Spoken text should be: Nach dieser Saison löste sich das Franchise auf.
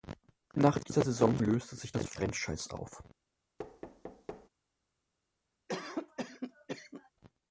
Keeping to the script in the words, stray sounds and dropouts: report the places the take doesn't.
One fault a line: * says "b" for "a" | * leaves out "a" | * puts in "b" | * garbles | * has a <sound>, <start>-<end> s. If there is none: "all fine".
* has a thud, 3.6-4.5 s
* has a cough, 5.7-7.1 s